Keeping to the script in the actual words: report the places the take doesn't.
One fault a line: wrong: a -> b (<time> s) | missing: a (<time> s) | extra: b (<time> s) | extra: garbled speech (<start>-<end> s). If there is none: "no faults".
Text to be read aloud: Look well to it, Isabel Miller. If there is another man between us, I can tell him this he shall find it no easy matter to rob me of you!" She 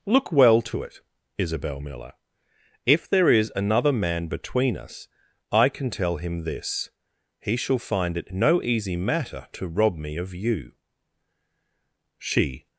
no faults